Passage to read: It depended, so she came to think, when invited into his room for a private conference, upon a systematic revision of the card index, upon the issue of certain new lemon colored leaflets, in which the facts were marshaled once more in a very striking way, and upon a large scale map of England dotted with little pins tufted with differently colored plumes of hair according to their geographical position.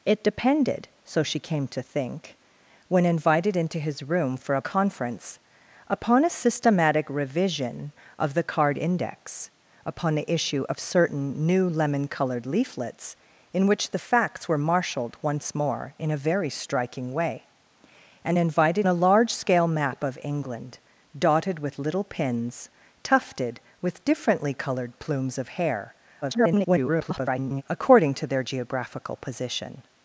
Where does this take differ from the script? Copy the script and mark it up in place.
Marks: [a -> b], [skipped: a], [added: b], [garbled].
It depended, so she came to think, when invited into his room for a [skipped: private] conference, upon a systematic revision of the card index, upon the issue of certain new lemon colored leaflets, in which the facts were marshaled once more in a very striking way, and [upon -> invited] a large scale map of England dotted with little pins tufted with differently colored plumes of hair [garbled] according to their geographical position.